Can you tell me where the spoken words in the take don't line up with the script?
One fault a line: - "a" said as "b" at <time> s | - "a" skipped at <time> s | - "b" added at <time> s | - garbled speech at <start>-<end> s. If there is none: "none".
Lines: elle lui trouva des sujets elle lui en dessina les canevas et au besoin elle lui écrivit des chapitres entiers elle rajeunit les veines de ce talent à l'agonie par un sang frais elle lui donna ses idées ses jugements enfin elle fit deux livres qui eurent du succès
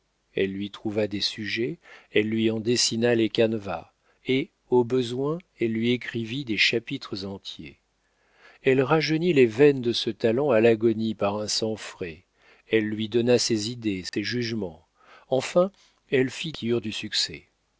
- "deux livres" skipped at 16.5 s